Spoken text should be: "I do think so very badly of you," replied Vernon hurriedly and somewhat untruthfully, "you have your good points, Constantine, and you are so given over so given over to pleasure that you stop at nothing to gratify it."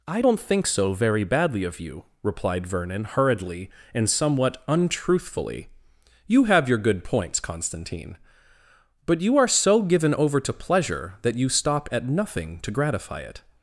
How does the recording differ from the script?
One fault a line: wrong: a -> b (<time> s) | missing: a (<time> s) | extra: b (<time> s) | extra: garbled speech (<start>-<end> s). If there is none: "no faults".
wrong: do -> don't (0.2 s)
wrong: and -> but (9.1 s)
missing: so given over (10.4 s)